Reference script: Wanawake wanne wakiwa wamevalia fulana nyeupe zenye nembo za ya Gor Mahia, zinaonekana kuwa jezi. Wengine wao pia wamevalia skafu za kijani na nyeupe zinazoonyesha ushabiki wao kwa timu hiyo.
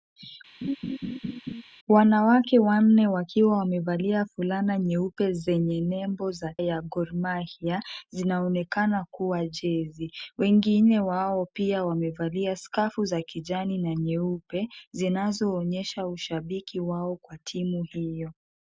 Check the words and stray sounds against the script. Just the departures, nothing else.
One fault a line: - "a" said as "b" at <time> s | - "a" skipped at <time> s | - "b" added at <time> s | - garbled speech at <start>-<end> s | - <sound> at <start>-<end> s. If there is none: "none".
- laugh at 0.6-1.6 s